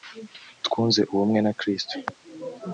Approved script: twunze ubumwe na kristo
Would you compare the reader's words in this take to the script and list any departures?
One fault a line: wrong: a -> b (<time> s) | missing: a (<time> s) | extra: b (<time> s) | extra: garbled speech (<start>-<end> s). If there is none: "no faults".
no faults